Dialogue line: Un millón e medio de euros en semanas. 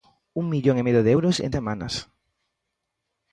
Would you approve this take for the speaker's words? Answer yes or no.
yes